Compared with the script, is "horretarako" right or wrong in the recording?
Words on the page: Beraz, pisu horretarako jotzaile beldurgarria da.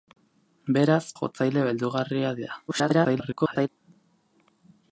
wrong